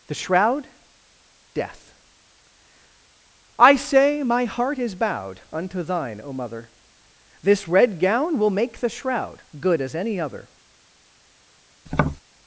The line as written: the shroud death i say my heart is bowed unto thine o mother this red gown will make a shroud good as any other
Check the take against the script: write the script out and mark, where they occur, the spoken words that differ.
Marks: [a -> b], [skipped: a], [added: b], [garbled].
the shroud death i say my heart is bowed unto thine o mother this red gown will make [a -> the] shroud good as any other